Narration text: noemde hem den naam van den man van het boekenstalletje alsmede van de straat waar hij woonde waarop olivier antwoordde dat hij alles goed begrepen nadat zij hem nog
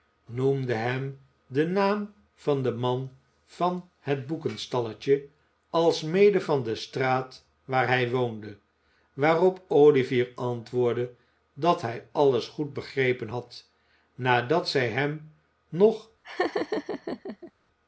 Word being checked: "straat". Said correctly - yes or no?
yes